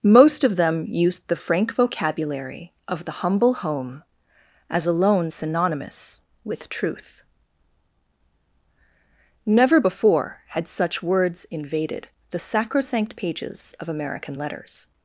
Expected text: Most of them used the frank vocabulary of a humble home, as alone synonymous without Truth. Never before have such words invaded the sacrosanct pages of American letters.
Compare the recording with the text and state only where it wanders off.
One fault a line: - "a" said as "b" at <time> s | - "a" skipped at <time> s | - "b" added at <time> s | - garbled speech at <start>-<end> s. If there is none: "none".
- "a" said as "the" at 3.0 s
- "without" said as "with" at 6.5 s
- "have" said as "had" at 10.5 s